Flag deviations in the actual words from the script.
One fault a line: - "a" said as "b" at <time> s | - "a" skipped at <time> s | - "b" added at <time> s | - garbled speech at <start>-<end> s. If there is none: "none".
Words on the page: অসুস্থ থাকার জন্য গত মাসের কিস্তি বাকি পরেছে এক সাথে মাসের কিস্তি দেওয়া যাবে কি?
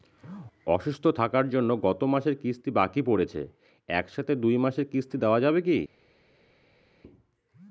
- "দুই" added at 4.4 s